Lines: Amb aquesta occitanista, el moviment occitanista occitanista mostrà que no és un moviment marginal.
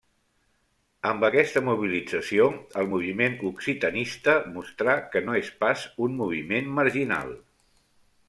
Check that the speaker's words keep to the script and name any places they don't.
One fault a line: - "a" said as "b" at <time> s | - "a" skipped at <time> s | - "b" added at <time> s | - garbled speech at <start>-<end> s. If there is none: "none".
- "occitanista" said as "mobilització" at 1.7 s
- "occitanista" skipped at 4.4 s
- "pas" added at 5.6 s